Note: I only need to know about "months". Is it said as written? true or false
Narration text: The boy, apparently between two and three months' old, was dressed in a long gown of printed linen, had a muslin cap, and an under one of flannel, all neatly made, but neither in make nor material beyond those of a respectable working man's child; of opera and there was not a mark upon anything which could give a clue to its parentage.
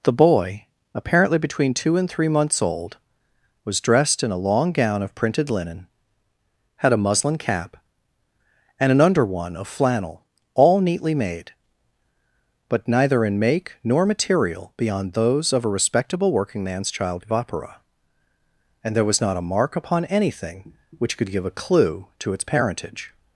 true